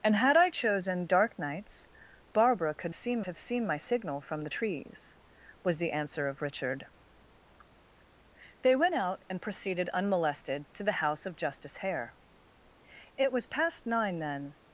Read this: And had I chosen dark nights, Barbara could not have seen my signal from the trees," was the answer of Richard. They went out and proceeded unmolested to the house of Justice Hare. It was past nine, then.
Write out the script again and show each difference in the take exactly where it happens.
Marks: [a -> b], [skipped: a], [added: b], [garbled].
And had I chosen dark nights, Barbara could [not -> seen] have seen my signal from the trees," was the answer of Richard. They went out and proceeded unmolested to the house of Justice Hare. It was past nine, then.